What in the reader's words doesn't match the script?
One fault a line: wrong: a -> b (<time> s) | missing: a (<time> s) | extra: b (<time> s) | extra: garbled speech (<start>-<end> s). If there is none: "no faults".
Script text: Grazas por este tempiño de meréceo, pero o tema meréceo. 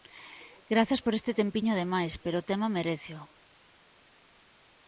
wrong: meréceo -> máis (1.9 s)